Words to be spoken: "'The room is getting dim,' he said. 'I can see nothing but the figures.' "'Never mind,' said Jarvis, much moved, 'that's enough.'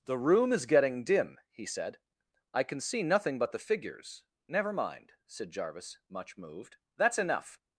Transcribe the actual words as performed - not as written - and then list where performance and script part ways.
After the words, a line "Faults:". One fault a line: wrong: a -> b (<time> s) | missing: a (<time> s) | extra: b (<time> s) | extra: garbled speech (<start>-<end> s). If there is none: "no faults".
"'The room is getting dim,' he said. 'I can see nothing but the figures.' "'Never mind,' said Jarvis, much moved, 'that's enough.'
Faults:
no faults